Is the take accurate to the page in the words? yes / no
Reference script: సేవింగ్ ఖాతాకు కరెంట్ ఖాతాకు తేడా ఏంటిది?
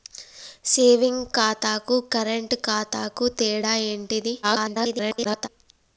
no